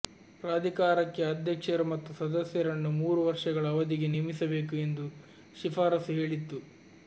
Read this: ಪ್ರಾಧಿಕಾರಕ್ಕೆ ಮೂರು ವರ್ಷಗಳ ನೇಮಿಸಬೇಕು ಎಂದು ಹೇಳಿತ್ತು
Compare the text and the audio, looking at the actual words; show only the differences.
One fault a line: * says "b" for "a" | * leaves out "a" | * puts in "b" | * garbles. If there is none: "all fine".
* puts in "ಅಧ್ಯಕ್ಷರು ಮತ್ತು ಸದಸ್ಯರನ್ನು"
* puts in "ಅವಧಿಗೆ"
* puts in "ಶಿಫಾರಸು"